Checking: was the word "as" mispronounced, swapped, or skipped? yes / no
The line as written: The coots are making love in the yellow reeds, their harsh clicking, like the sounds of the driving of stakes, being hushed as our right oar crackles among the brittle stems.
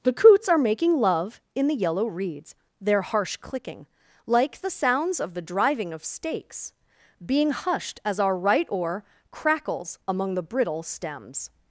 no